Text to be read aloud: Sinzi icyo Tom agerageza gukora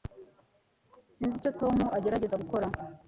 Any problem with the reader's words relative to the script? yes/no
no